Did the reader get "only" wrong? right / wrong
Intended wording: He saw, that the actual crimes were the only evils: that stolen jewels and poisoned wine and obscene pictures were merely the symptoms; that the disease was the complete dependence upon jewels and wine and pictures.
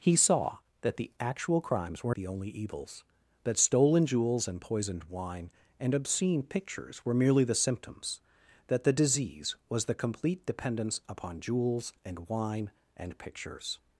right